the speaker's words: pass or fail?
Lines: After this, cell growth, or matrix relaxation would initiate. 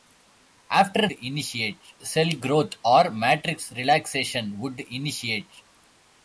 fail